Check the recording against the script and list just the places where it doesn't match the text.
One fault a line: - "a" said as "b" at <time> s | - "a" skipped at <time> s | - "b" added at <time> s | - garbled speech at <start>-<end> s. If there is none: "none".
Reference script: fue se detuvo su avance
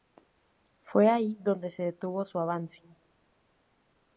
- "ahí donde" added at 1.1 s